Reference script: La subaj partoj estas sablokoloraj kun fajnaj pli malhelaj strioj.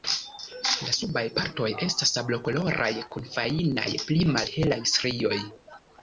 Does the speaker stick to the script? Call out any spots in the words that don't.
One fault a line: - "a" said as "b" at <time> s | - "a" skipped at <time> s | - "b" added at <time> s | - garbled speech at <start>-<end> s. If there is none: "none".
none